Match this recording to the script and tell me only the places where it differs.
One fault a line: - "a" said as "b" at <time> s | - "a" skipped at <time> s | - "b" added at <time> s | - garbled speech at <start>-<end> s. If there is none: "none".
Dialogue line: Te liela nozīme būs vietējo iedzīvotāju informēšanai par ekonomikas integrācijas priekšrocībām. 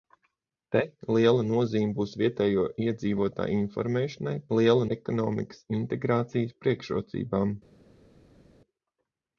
- "par" said as "liela" at 4.6 s